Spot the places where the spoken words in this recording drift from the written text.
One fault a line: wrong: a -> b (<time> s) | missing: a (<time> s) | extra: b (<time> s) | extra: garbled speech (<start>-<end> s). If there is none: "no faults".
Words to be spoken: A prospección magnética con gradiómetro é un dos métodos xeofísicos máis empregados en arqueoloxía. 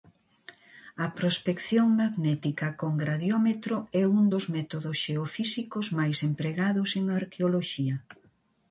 no faults